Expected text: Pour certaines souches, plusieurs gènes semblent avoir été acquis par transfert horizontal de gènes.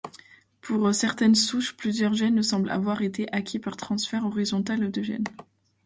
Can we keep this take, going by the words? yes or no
yes